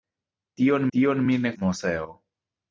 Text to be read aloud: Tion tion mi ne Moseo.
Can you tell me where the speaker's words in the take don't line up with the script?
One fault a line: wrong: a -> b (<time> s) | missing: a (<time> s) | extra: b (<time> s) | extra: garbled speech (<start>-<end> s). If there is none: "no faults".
no faults